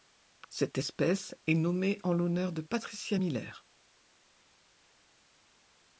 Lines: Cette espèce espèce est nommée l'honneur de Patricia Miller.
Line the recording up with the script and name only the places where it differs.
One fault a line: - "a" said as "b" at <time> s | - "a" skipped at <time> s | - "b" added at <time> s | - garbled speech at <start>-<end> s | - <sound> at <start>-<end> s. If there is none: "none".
- "espèce" skipped at 1.4 s
- "en" added at 2.0 s